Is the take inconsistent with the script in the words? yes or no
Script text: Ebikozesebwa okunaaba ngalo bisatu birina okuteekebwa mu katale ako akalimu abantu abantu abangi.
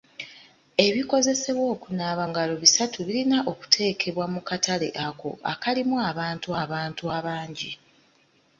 no